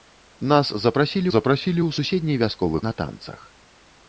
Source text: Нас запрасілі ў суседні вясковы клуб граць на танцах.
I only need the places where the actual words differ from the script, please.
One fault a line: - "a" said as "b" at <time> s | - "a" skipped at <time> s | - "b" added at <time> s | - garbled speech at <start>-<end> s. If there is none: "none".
- "запрасілі" added at 1.3 s
- "клуб граць" skipped at 2.8 s